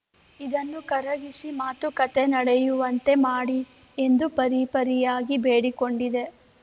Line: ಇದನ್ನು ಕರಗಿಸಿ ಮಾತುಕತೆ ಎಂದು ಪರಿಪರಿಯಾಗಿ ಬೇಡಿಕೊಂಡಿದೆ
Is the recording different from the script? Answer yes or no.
yes